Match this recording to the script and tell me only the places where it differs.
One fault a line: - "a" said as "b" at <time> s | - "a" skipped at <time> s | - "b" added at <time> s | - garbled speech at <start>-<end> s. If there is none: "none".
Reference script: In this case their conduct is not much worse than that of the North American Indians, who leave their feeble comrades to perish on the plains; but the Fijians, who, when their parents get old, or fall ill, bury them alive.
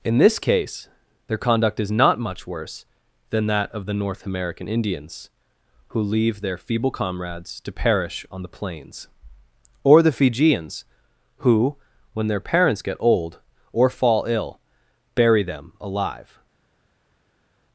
- "but" said as "or" at 9.8 s